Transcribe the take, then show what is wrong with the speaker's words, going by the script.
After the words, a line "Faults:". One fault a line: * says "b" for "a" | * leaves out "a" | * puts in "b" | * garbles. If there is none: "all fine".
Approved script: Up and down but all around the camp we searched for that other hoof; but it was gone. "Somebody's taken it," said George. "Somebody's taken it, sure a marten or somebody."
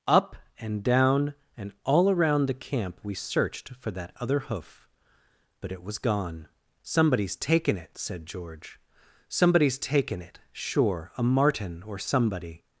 Up and down and all around the camp we searched for that other hoof; but it was gone. "Somebody's taken it," said George. "Somebody's taken it, sure a marten or somebody."
Faults:
* says "and" for "but"